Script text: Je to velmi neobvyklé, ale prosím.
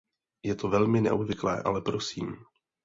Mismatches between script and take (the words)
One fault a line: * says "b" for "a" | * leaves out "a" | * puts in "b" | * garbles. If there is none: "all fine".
all fine